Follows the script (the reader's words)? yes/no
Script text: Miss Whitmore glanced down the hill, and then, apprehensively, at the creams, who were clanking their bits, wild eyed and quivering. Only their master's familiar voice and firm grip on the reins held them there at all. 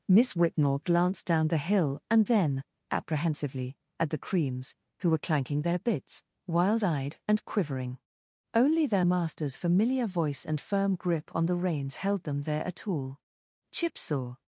no